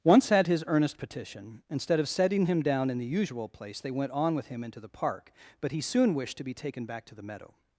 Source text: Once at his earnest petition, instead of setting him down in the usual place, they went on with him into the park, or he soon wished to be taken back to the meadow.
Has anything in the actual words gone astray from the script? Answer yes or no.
yes